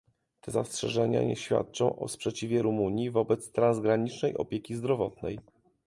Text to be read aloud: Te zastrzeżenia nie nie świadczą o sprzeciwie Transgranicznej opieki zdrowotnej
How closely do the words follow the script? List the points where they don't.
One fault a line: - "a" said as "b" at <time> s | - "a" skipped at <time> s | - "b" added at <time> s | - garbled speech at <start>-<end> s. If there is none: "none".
- "nie" skipped at 1.4 s
- "Rumunii wobec" added at 2.6 s